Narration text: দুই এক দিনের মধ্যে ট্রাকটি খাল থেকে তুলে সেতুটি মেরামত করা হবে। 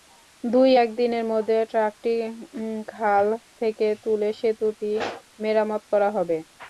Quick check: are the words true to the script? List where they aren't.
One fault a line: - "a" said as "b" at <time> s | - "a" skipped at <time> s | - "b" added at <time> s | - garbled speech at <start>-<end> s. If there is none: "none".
none